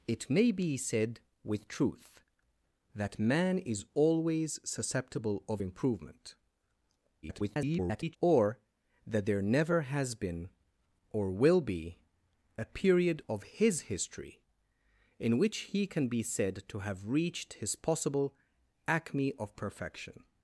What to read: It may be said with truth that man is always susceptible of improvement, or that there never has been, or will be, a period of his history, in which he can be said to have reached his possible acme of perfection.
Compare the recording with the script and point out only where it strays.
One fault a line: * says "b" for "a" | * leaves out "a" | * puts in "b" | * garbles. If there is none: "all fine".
* garbles